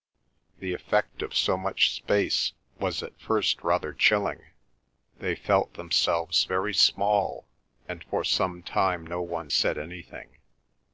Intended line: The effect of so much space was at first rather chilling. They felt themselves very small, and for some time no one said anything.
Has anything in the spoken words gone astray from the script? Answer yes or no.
no